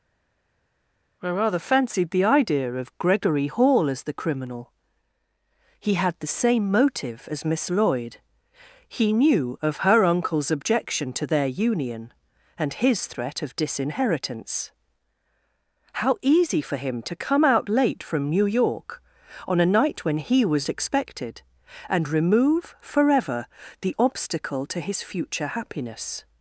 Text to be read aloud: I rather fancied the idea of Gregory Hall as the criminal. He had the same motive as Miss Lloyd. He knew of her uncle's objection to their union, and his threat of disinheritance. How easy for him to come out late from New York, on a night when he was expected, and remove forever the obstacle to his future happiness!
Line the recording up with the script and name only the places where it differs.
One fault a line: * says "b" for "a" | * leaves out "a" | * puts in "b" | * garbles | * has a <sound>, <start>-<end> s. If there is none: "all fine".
all fine